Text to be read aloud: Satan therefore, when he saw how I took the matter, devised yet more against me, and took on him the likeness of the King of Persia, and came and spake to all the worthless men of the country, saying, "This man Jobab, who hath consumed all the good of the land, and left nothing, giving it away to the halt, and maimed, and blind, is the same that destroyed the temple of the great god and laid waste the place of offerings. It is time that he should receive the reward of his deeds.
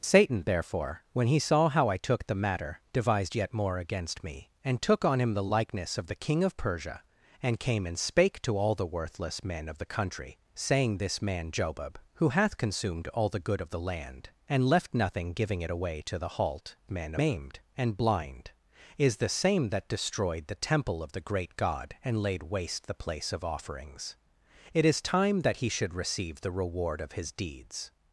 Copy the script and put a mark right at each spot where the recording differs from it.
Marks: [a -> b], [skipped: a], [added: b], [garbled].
Satan therefore, when he saw how I took the matter, devised yet more against me, and took on him the likeness of the King of Persia, and came and spake to all the worthless men of the country, saying, "This man Jobab, who hath consumed all the good of the land, and left nothing, giving it away to the halt, [and -> men] maimed, and blind, is the same that destroyed the temple of the great god and laid waste the place of offerings. It is time that he should receive the reward of his deeds.